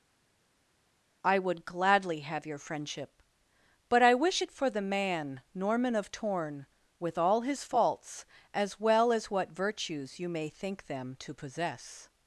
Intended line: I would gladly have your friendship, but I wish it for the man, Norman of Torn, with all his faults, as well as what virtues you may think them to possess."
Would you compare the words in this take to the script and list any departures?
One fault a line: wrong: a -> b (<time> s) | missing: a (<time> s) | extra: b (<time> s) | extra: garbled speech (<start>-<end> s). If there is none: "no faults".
no faults